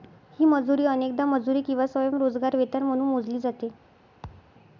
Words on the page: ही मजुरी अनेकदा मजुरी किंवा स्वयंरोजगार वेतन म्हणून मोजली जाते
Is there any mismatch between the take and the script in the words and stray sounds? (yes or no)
yes